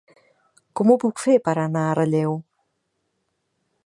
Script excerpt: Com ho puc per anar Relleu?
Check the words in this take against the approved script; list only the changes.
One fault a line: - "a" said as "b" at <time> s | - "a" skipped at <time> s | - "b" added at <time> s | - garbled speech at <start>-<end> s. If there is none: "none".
- "fer" added at 1.2 s
- "a" added at 1.9 s